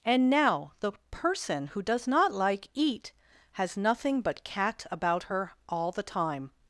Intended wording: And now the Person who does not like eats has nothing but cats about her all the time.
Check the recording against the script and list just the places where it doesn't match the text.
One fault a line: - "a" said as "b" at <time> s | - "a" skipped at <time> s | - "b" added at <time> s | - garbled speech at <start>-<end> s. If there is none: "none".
- "eats" said as "eat" at 2.7 s
- "cats" said as "cat" at 4.4 s